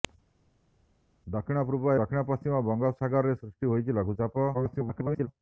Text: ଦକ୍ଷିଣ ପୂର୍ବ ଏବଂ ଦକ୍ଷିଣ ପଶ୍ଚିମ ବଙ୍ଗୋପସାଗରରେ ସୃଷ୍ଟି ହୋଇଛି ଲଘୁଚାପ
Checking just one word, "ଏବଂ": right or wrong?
wrong